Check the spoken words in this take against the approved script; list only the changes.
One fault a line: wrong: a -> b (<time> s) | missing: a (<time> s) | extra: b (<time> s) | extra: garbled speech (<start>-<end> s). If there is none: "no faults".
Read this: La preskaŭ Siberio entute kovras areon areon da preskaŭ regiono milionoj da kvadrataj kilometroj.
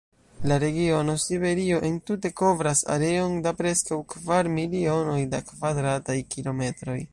wrong: preskaŭ -> regiono (0.6 s)
missing: areon (3.3 s)
wrong: regiono -> kvar (4.2 s)